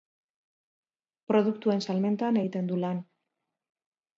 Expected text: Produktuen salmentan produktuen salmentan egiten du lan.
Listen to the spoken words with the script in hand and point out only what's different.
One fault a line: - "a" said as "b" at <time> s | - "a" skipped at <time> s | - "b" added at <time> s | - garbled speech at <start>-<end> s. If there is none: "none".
- "produktuen salmentan" skipped at 2.4 s